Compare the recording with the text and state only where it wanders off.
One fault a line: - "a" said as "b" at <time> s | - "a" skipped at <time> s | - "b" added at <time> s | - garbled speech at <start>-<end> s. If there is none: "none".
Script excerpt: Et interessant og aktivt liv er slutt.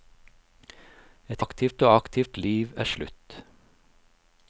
- "interessant" said as "aktivt" at 1.4 s